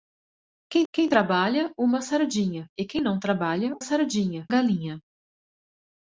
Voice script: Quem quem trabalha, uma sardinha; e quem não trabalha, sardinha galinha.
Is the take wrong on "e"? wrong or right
right